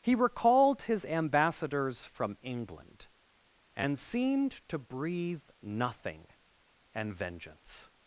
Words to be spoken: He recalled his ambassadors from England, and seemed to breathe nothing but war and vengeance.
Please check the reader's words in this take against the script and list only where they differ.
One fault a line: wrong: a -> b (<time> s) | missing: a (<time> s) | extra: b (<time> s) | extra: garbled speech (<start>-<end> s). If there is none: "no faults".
missing: but war (6.3 s)